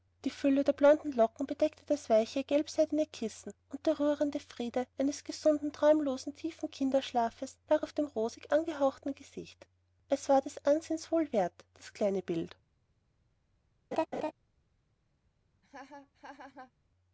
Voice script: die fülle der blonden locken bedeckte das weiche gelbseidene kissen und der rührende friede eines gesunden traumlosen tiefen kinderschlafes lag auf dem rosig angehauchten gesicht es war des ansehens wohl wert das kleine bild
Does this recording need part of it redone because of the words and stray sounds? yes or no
yes